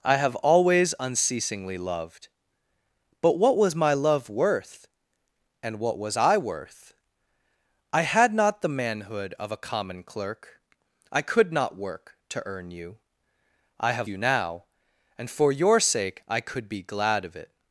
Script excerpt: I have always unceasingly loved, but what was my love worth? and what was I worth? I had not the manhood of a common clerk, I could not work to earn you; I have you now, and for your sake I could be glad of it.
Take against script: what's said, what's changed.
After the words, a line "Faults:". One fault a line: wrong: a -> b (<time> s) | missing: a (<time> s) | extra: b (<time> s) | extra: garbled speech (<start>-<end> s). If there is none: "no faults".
I have always unceasingly loved, but what was my love worth? and what was I worth? I had not the manhood of a common clerk, I could not work to earn you; I have you now, and for your sake I could be glad of it.
Faults:
no faults